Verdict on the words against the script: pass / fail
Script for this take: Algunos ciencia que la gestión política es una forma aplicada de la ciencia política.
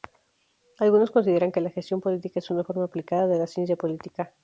fail